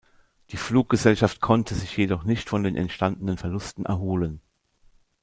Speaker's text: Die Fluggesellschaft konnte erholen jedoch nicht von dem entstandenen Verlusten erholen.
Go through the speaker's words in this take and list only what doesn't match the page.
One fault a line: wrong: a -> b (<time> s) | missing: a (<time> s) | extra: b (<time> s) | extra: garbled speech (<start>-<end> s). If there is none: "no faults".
wrong: erholen -> sich (1.8 s)
wrong: dem -> den (2.6 s)